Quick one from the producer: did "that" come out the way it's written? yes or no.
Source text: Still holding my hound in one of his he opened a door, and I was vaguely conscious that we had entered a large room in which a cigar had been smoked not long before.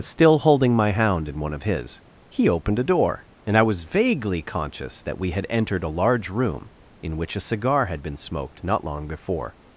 yes